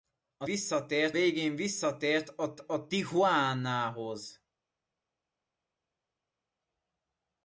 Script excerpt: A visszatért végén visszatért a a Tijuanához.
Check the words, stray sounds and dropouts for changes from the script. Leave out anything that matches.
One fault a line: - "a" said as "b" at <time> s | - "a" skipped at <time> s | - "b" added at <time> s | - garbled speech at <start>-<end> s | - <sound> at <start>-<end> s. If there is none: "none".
none